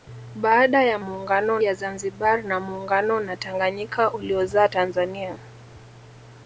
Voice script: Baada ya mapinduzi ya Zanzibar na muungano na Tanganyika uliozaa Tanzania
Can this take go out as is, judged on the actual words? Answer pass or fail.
fail